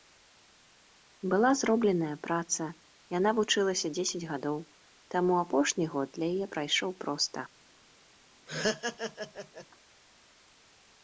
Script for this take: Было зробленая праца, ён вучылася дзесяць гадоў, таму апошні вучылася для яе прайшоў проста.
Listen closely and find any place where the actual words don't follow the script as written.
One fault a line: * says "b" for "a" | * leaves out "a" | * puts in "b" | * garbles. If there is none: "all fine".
* says "Была" for "Было"
* says "яна" for "ён"
* says "год" for "вучылася"